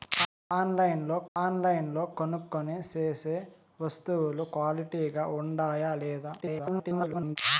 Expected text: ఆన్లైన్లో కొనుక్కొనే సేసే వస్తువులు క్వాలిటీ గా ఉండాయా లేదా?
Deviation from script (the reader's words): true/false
true